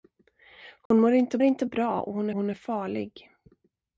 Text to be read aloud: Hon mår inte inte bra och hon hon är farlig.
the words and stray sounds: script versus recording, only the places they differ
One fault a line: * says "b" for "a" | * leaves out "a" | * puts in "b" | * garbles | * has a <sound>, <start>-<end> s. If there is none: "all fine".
* has a dropout, 0.9-0.9 s